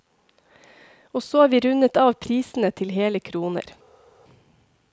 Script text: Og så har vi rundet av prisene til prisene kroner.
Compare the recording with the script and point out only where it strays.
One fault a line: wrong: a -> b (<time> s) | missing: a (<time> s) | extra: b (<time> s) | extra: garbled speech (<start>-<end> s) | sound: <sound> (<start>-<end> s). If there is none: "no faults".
wrong: prisene -> hele (3.0 s)